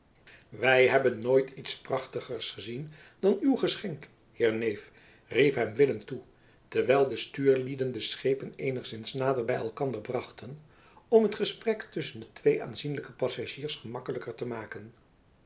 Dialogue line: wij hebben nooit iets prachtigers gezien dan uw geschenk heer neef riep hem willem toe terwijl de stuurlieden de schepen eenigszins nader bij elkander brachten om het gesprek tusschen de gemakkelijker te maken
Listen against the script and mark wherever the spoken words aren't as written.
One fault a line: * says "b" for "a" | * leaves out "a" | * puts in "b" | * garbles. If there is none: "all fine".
* puts in "twee aanzienlijke passagiers"